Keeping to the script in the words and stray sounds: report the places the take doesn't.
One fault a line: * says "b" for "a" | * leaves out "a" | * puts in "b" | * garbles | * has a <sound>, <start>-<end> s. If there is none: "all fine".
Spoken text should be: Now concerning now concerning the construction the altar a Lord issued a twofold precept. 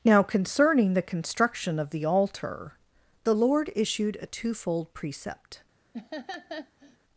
* leaves out "now concerning"
* puts in "of"
* says "the" for "a"
* has a laugh, 5.9-7.0 s